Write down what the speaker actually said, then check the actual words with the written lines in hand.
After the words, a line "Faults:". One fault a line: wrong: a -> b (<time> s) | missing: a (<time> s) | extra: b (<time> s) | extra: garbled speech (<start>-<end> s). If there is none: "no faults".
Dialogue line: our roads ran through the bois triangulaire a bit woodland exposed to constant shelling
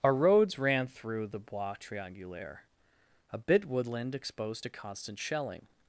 our roads ran through the bois triangulaire a bit woodland exposed to constant shelling
Faults:
no faults